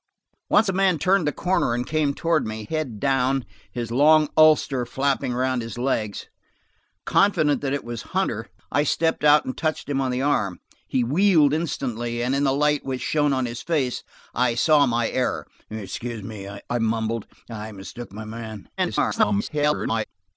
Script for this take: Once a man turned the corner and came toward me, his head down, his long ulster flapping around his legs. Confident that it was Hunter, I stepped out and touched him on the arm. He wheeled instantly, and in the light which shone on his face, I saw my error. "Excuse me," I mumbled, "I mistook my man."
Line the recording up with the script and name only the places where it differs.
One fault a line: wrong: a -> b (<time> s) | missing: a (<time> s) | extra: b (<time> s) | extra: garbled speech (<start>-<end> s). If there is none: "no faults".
missing: his (2.6 s)
extra: garbled speech (18.8-20.0 s)